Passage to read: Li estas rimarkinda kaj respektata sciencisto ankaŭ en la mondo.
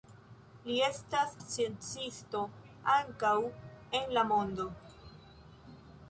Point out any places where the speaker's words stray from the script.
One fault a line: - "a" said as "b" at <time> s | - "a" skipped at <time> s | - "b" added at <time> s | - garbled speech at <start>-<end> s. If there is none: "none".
- "rimarkinda kaj respektata" skipped at 1.4 s